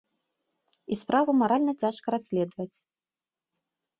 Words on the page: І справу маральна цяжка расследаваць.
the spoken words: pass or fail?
pass